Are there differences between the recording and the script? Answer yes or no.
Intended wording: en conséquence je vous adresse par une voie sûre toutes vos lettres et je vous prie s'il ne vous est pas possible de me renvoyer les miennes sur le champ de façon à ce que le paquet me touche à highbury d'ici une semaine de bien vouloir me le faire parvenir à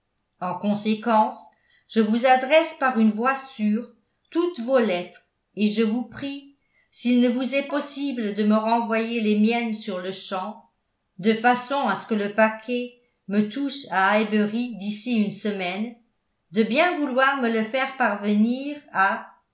yes